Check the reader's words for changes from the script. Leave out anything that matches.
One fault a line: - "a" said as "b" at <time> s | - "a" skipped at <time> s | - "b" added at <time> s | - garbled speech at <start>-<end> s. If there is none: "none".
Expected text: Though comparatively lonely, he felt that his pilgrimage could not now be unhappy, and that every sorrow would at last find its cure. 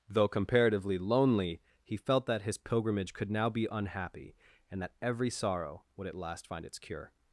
- "not" skipped at 3.3 s